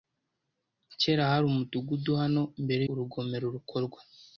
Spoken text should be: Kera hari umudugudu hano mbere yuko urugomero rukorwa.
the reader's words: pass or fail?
fail